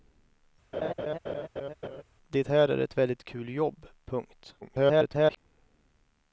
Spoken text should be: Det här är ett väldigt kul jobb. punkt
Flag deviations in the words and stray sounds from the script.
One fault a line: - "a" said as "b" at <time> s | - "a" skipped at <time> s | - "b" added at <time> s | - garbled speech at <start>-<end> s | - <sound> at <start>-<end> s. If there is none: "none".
- laugh at 0.7-2.0 s
- garbled speech at 4.6-5.4 s